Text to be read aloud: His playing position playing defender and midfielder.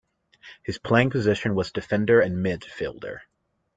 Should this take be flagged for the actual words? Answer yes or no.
yes